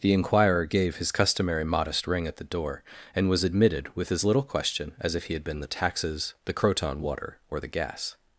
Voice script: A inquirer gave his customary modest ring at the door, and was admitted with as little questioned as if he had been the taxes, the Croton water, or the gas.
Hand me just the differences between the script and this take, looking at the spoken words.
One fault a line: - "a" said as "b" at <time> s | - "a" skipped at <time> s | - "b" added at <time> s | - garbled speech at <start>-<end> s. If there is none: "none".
- "A" said as "The" at 0.0 s
- "questioned" said as "question" at 4.4 s